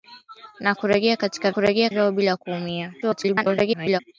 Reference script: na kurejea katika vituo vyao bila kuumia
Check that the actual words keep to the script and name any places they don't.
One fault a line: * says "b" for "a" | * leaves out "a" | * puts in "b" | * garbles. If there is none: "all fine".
* says "kurejea" for "vituo"
* garbles